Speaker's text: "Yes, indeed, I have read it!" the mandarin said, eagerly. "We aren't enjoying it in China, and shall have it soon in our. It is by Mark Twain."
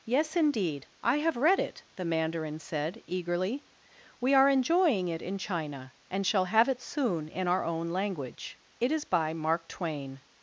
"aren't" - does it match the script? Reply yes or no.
no